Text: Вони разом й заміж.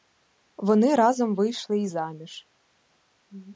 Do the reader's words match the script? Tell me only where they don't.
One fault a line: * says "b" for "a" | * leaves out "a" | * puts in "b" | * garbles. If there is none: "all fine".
* puts in "вийшли"